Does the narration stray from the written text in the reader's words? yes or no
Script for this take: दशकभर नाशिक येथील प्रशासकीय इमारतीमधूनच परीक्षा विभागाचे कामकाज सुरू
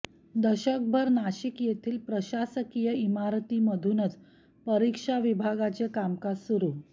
no